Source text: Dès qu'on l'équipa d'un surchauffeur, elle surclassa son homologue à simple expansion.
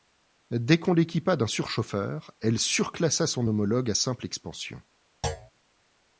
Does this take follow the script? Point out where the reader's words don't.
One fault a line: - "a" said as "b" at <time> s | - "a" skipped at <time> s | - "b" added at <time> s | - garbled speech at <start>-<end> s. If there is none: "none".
none